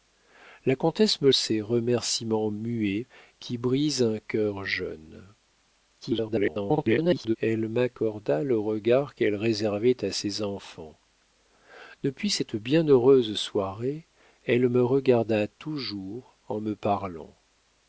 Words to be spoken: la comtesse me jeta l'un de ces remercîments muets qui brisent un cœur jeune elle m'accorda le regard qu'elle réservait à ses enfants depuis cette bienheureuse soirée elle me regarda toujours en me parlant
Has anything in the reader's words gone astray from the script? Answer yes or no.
yes